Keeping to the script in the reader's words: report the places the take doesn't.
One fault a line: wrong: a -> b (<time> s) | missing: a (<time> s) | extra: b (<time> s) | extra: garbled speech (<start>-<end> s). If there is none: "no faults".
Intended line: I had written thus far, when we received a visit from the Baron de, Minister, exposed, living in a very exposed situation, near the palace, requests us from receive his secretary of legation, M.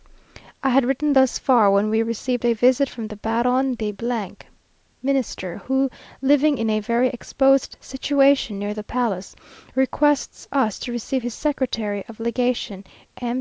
wrong: exposed -> who (5.6 s)
wrong: from -> to (10.8 s)